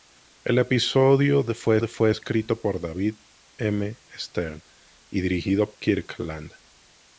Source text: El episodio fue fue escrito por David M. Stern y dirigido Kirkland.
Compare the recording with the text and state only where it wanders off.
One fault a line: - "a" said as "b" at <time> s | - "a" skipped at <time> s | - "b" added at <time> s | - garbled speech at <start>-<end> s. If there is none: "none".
none